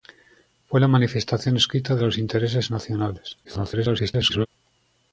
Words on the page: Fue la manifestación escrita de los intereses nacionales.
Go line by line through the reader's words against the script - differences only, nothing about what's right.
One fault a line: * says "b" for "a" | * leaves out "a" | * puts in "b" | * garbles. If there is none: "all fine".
* garbles